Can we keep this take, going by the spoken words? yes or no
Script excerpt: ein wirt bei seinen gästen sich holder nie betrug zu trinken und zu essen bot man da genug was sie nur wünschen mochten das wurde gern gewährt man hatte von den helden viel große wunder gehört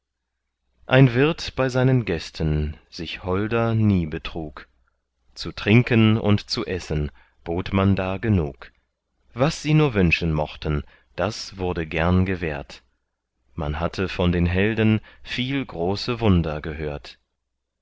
yes